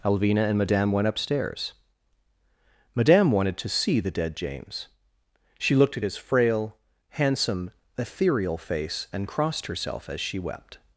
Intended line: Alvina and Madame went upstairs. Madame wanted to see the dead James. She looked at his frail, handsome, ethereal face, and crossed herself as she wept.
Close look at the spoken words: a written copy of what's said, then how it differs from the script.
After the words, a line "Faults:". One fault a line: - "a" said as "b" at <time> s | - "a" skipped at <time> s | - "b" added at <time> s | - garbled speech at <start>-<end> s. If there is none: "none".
Alvina and Madame went upstairs. Madame wanted to see the dead James. She looked at his frail, handsome, ethereal face, and crossed herself as she wept.
Faults:
none